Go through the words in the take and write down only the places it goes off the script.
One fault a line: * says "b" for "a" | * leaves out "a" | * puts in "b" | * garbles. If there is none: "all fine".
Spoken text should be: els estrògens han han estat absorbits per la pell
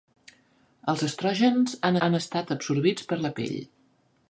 all fine